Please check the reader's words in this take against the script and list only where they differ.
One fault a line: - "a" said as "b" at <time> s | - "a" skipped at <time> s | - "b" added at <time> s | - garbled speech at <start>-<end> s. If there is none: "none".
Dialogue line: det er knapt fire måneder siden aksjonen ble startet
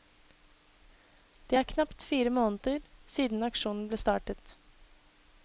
none